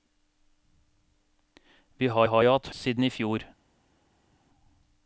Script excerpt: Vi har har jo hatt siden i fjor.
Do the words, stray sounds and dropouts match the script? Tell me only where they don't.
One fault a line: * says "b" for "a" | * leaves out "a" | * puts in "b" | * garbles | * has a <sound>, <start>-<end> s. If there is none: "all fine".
all fine